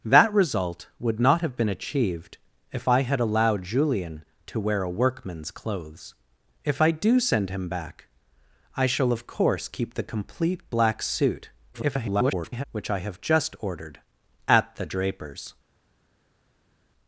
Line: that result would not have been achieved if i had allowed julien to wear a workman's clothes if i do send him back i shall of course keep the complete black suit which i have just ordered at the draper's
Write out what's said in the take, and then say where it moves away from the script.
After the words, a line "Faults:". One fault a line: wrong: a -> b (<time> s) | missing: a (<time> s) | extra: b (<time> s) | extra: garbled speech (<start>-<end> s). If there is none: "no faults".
that result would not have been achieved if i had allowed julien to wear a workman's clothes if i do send him back i shall of course keep the complete black suit [garbled] which i have just ordered at the draper's
Faults:
extra: garbled speech (11.7-12.6 s)